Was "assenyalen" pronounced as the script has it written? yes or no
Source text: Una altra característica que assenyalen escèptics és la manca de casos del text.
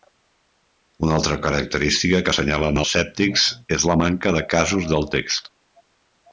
yes